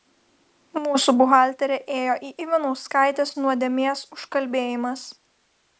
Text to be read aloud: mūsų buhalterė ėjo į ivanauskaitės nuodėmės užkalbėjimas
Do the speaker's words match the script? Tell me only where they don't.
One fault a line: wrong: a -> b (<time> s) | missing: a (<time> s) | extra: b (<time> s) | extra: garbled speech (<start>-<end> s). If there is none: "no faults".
no faults